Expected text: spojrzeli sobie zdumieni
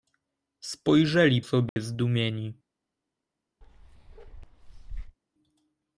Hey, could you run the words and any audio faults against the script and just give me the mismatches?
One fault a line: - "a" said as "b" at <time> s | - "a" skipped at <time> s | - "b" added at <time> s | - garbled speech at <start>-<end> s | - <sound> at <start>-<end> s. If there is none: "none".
- dropout at 1.7-1.8 s
- bark at 3.6-5.2 s